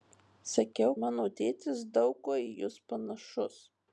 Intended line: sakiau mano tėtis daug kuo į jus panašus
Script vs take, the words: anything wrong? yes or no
no